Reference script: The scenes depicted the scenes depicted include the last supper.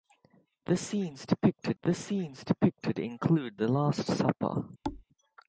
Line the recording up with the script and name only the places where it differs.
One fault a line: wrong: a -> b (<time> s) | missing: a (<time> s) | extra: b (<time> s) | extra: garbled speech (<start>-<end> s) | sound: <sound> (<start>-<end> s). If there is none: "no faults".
sound: thud (4.8-5.0 s)